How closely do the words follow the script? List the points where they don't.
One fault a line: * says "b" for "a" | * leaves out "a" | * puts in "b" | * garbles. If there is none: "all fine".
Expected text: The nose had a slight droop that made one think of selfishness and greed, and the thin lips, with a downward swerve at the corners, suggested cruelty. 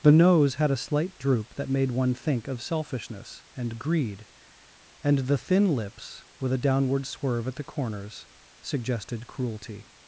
all fine